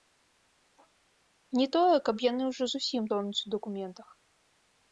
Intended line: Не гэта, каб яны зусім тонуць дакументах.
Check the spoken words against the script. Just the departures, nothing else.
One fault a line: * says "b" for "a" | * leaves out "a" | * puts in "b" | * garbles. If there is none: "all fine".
* says "тое" for "гэта"
* puts in "ўжо"
* puts in "у"